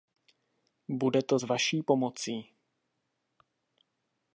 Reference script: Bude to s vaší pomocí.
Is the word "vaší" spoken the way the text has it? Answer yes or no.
yes